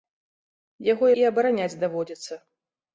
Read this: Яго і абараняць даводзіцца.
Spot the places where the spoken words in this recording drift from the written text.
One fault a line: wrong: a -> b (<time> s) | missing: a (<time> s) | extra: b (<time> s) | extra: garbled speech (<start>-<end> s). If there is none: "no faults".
no faults